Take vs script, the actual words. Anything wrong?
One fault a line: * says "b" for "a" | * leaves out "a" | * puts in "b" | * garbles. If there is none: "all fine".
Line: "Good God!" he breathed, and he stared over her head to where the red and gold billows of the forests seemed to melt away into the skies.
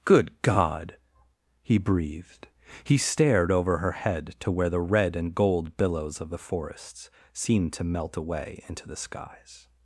* leaves out "and"